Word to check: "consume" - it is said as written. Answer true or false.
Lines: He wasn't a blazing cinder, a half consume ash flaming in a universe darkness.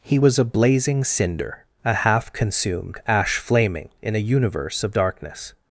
false